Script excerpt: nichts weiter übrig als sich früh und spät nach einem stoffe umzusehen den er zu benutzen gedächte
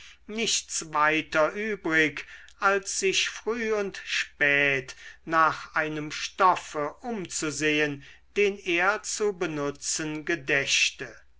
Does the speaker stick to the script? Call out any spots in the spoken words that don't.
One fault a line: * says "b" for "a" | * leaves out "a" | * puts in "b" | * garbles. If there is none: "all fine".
all fine